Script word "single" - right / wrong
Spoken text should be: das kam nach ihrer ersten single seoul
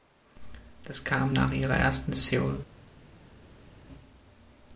wrong